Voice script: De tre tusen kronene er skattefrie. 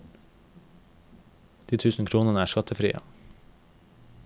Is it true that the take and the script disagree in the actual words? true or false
true